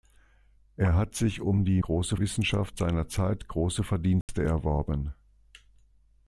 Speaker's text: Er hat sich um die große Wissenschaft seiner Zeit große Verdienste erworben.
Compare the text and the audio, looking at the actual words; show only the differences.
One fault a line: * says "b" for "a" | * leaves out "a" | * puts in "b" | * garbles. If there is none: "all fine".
all fine